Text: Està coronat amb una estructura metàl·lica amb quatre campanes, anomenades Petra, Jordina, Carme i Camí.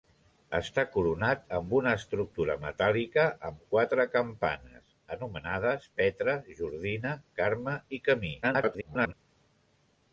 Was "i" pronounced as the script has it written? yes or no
yes